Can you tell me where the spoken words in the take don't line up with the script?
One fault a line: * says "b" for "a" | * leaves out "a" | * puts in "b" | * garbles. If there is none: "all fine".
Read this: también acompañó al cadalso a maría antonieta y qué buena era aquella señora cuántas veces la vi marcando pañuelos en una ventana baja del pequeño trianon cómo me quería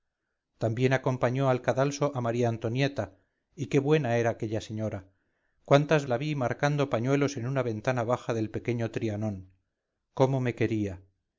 * leaves out "veces"